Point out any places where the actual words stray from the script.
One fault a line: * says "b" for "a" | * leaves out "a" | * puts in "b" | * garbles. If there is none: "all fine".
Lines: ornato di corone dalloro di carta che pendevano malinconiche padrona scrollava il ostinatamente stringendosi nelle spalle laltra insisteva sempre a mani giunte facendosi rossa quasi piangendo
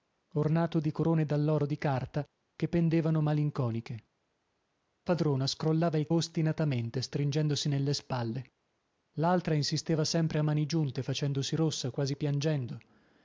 all fine